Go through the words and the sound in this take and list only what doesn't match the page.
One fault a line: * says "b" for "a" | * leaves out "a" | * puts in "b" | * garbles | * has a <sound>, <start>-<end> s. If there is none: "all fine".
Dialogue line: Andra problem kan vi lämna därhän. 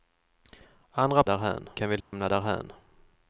* says "därhän" for "problem"
* has a dropout, 2.0-2.1 s